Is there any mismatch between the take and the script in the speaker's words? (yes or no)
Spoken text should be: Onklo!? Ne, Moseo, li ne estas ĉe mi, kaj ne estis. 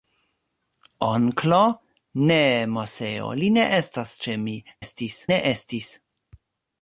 yes